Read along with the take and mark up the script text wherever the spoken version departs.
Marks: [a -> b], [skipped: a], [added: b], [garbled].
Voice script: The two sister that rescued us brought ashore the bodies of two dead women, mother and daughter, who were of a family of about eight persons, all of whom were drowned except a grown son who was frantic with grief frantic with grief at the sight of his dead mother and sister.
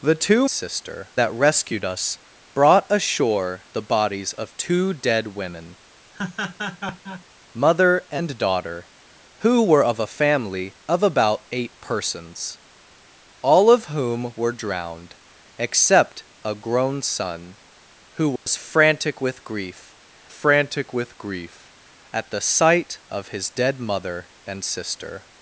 The two sister that rescued us brought ashore the bodies of two dead women, mother and daughter, who were of a family of about eight persons, all of whom were drowned except a grown son who was frantic with grief frantic with grief at the sight of his dead mother and sister.